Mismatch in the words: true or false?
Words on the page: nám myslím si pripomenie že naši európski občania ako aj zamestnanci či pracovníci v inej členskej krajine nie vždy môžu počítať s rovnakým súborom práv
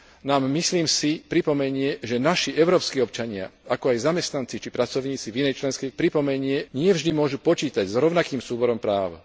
true